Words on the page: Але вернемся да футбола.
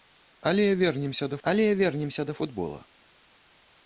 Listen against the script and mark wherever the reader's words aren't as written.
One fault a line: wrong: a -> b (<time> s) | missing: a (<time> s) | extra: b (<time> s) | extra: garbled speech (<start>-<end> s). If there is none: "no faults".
extra: але вернемся да (1.4 s)